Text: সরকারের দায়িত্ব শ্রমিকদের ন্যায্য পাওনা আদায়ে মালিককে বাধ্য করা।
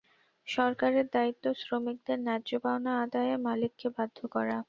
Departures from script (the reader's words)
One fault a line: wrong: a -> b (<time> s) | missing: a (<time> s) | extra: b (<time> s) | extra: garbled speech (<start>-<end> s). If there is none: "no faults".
no faults